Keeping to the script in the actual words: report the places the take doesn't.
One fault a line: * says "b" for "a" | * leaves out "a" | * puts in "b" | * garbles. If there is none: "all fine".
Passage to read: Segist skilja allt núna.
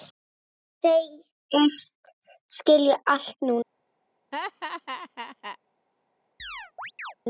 all fine